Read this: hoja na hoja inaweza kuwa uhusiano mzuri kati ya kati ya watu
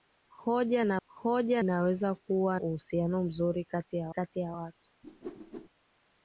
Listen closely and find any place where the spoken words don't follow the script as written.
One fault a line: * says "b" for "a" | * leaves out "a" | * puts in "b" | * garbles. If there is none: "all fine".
all fine